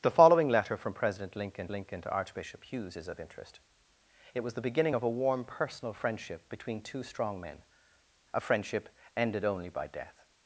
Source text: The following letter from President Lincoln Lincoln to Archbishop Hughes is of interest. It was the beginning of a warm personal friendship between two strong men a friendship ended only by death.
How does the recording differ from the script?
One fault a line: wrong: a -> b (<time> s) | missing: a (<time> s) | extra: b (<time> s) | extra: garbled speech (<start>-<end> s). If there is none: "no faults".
no faults